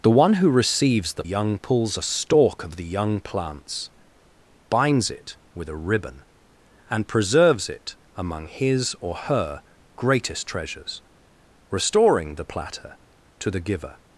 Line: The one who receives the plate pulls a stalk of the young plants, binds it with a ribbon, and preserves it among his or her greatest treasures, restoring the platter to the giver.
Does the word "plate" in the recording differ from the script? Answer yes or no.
yes